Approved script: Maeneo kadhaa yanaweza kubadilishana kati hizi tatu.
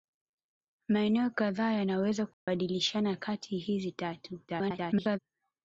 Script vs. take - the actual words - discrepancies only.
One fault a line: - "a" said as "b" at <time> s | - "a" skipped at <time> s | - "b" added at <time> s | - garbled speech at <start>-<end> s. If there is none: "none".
- garbled speech at 4.5-5.2 s